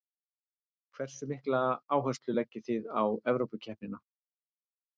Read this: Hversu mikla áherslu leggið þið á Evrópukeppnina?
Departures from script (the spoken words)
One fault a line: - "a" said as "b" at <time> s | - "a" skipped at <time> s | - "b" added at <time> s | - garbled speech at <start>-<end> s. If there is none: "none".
none